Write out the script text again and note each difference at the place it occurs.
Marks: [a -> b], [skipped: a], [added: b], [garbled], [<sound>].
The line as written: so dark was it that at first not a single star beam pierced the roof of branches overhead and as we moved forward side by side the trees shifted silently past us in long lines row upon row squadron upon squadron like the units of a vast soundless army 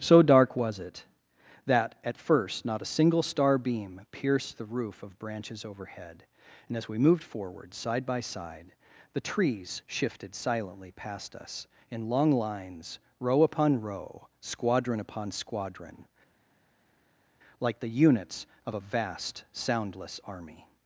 so dark was it that at first not a single star beam pierced the roof of branches overhead and as we moved forward side by side the trees shifted silently past us in long lines row upon row squadron upon squadron like the units of a vast soundless army